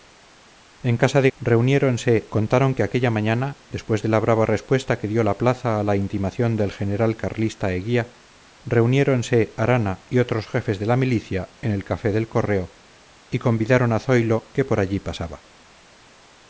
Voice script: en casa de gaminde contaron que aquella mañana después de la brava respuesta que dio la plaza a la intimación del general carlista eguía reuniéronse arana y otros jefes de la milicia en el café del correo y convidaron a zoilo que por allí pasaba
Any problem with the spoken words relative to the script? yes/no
yes